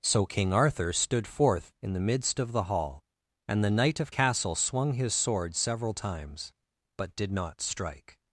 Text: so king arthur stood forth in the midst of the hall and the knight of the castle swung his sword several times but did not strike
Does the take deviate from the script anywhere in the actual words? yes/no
yes